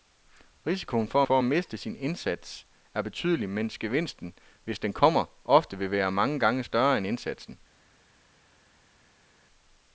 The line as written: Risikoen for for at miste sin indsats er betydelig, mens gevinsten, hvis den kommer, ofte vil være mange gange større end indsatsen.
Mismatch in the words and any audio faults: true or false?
false